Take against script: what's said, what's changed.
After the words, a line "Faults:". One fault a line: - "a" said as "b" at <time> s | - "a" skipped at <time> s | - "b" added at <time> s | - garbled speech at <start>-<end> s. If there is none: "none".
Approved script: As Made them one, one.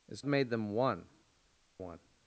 As Made them one, one.
Faults:
none